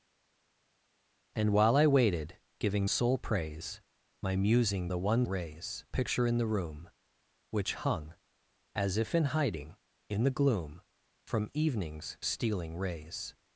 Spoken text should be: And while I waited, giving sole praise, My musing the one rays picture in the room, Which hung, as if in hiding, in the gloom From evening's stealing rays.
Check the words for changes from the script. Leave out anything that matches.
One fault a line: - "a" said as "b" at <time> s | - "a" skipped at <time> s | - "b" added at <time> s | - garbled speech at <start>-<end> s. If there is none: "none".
none